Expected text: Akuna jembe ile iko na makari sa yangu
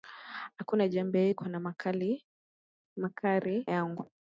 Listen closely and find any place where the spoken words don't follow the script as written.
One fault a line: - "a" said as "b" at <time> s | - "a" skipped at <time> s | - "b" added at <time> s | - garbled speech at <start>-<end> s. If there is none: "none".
- "ile" skipped at 1.3 s
- "sa" skipped at 3.7 s